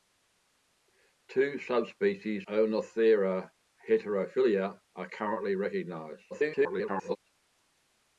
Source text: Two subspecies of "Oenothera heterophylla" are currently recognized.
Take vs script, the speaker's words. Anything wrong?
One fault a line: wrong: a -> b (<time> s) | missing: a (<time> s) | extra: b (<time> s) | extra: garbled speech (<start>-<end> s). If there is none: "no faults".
missing: of (2.5 s)
extra: garbled speech (6.3-7.2 s)